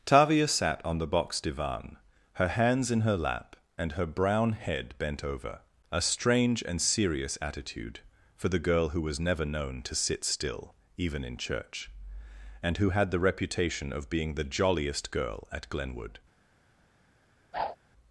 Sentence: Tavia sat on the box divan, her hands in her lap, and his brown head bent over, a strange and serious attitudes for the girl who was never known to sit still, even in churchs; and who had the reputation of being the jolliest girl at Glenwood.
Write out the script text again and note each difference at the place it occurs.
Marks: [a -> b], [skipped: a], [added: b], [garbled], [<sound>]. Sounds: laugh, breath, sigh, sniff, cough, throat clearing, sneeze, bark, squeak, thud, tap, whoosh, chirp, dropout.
Tavia sat on the box divan, her hands in her lap, and [his -> her] brown head bent over, a strange and serious [attitudes -> attitude] for the girl who was never known to sit still, even in [churchs; -> church] and who had the reputation of being the jolliest girl at Glenwood. [whoosh]